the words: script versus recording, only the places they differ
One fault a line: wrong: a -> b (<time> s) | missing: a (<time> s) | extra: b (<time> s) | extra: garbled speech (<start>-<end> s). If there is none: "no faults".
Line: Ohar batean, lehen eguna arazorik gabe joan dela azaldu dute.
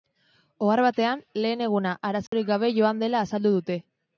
no faults